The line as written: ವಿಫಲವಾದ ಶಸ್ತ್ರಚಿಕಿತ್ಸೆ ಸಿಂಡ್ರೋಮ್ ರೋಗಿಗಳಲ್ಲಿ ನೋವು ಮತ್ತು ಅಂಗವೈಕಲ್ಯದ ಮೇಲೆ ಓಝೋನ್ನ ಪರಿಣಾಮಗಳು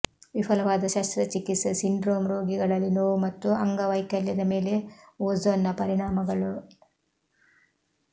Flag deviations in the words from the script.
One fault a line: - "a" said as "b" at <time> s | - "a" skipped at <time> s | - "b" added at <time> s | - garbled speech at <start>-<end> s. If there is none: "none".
none